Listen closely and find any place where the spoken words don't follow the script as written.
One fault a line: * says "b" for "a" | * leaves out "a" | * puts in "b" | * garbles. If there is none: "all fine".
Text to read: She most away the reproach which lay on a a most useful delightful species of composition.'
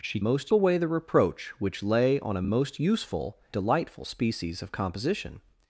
all fine